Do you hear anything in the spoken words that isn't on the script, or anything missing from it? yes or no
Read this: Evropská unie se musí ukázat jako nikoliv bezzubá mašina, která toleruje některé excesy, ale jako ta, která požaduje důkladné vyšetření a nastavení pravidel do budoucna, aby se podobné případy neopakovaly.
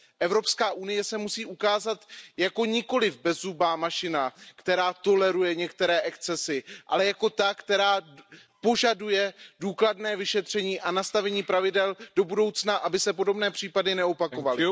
no